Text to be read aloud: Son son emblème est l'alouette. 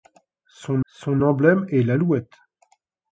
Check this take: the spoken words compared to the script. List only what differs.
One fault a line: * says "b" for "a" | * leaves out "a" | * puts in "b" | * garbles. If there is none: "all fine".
all fine